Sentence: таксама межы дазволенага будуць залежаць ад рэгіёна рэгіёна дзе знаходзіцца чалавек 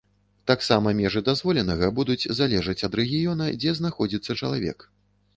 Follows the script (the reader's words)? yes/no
no